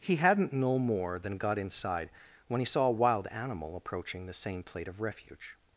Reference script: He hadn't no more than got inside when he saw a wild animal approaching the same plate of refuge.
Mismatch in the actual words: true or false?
false